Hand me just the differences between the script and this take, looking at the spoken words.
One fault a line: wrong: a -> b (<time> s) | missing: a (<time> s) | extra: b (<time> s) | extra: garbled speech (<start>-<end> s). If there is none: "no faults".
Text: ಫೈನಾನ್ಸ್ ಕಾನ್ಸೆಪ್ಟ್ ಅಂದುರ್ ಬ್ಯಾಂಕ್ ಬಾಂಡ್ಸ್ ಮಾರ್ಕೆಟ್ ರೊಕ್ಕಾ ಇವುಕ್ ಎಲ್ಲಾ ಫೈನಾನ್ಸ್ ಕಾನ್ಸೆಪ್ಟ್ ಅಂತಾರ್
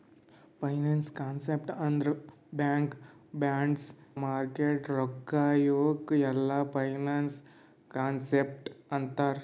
no faults